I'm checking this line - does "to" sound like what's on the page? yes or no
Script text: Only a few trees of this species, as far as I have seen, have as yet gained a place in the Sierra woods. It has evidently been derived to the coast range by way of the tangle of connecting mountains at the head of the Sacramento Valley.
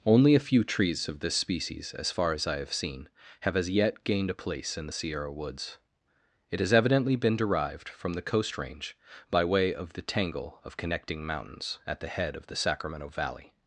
no